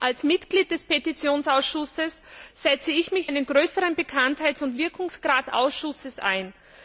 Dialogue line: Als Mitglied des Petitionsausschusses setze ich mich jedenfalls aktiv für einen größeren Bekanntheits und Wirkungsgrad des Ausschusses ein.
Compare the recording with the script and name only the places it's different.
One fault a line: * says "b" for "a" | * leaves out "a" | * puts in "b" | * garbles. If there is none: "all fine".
* leaves out "jedenfalls aktiv für"
* leaves out "des"